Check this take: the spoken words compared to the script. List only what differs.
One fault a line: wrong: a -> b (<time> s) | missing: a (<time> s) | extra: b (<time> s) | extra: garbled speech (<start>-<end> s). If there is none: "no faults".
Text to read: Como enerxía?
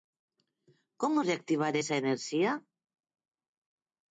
extra: reactivar esa (1.3 s)